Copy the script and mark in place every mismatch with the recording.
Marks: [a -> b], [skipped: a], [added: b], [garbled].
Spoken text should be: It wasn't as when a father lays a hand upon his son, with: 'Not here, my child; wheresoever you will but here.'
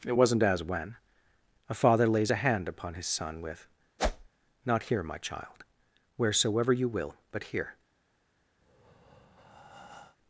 It wasn't as when a father lays a hand upon his son, with: 'Not here, my child; wheresoever you will but here.'